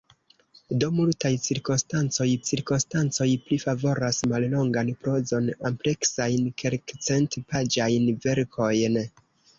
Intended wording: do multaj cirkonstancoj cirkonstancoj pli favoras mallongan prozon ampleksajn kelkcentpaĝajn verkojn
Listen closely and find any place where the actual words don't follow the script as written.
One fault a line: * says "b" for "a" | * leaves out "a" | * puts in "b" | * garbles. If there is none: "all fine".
all fine